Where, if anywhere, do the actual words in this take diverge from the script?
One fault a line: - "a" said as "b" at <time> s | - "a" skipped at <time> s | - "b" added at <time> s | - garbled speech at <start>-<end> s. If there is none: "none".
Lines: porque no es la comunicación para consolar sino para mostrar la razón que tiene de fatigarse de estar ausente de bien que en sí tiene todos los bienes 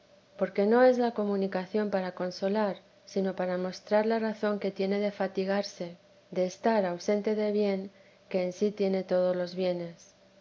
none